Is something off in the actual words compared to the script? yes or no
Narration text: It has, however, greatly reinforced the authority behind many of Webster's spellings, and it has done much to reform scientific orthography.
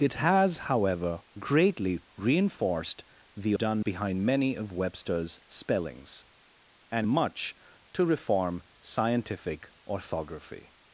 yes